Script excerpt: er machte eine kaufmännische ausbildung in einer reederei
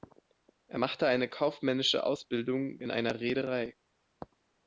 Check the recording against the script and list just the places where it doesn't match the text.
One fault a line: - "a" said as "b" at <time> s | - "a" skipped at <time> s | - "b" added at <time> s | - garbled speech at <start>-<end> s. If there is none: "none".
none